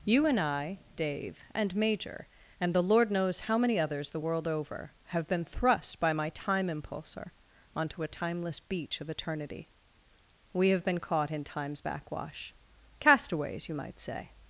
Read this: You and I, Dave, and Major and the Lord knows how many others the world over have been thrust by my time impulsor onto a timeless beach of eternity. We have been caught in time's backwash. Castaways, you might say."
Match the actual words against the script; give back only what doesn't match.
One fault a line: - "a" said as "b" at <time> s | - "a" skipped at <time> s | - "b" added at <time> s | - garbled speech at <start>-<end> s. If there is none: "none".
none